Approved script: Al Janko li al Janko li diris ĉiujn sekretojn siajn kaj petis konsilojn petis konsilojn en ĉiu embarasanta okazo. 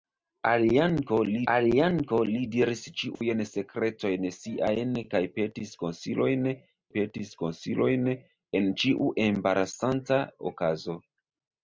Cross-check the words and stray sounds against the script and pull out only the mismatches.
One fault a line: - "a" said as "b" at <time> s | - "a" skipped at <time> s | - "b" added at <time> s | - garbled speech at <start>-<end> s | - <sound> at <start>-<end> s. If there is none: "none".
- dropout at 3.2-3.2 s